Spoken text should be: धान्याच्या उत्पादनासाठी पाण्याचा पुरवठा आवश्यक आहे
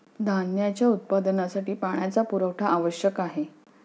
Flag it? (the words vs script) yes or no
no